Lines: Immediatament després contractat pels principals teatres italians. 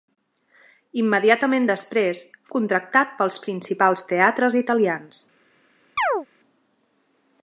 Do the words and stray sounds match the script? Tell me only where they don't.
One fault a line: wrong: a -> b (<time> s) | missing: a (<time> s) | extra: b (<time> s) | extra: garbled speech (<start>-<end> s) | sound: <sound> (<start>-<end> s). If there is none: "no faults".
sound: chirp (6.0-6.3 s)